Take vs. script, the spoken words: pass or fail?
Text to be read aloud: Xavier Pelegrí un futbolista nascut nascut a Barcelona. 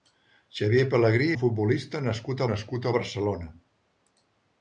pass